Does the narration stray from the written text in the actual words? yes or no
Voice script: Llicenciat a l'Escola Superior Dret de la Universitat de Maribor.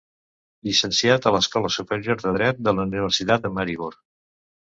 yes